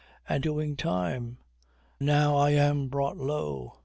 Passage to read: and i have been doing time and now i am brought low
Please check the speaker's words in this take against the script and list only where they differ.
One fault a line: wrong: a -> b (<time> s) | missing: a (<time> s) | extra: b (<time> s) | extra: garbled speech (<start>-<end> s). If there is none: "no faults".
missing: i have been (0.5 s)
missing: and (1.4 s)